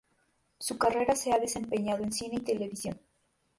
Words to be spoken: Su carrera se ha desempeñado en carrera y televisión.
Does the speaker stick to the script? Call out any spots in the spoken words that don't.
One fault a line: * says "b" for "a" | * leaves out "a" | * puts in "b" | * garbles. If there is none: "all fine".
* says "cine" for "carrera"